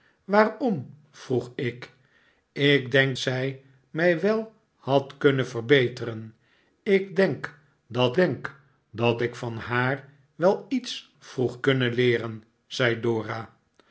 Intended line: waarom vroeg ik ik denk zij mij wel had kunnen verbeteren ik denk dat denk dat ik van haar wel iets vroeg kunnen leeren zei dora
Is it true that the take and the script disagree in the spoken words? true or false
false